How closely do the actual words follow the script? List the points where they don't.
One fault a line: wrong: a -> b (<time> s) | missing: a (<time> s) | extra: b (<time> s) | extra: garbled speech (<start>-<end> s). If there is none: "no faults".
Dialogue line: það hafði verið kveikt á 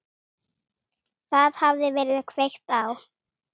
no faults